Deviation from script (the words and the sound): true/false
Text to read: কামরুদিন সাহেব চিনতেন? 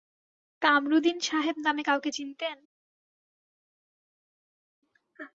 true